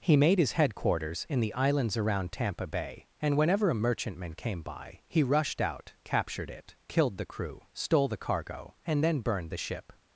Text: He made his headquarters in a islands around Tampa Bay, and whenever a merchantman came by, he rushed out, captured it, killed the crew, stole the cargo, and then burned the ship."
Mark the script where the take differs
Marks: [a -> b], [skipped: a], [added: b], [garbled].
He made his headquarters in [a -> the] islands around Tampa Bay, and whenever a merchantman came by, he rushed out, captured it, killed the crew, stole the cargo, and then burned the ship."